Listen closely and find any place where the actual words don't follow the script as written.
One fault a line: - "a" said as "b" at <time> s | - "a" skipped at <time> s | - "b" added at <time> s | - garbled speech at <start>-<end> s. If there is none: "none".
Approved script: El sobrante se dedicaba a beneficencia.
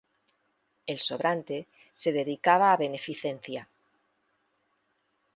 none